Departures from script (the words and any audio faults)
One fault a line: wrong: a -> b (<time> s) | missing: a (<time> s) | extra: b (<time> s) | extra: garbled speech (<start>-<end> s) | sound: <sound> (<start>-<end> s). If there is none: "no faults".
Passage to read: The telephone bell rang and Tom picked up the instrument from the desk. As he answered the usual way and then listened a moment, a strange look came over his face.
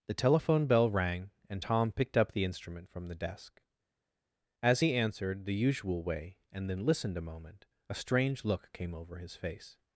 no faults